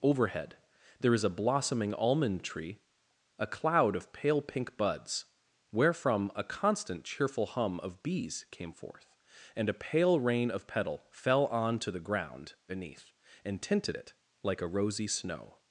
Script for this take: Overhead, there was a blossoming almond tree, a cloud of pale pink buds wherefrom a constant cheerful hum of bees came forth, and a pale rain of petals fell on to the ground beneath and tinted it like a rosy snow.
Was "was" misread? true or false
true